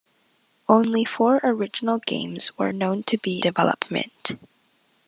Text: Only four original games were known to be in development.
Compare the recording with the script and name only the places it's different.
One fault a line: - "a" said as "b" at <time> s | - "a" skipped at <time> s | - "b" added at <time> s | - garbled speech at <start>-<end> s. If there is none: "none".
- "in" skipped at 3.4 s